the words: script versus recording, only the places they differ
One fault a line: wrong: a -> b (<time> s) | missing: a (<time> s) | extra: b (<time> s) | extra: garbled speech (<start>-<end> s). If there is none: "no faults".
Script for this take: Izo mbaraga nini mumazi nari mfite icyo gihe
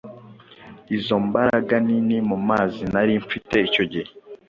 no faults